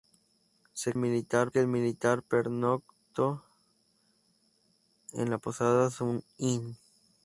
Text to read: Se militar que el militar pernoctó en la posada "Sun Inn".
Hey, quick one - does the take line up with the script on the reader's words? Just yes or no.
yes